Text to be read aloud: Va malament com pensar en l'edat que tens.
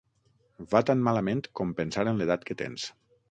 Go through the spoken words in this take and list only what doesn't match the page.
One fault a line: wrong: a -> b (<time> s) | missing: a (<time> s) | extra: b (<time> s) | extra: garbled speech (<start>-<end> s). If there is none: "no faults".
extra: tan (0.9 s)